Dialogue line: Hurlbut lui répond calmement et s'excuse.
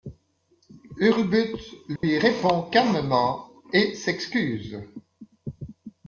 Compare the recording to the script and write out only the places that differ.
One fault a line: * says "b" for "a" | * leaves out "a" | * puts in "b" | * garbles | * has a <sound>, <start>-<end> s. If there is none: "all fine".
* has a dropout, 2.0-2.0 s